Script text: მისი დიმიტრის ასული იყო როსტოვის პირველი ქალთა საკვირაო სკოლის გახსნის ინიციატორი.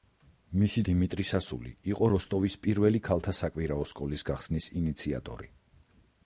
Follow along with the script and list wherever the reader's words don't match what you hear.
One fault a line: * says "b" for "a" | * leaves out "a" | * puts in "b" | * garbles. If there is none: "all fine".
all fine